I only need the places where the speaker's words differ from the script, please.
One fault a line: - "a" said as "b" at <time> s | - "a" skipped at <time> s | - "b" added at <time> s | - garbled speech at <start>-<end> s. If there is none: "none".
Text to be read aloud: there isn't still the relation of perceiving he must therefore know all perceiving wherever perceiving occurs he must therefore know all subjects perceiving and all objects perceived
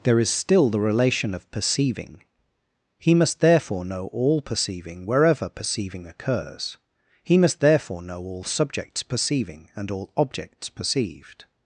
- "isn't" said as "is" at 0.2 s